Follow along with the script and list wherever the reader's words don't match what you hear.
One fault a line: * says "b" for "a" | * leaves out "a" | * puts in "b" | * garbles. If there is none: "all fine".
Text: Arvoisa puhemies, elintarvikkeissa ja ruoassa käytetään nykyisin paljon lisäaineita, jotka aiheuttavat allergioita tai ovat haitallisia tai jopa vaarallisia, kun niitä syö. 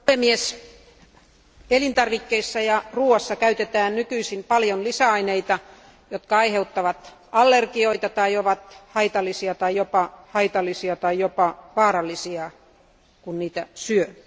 * puts in "haitallisia tai jopa"